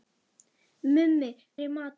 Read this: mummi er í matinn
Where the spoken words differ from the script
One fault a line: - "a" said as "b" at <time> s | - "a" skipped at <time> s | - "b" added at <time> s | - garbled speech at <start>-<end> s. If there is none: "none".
none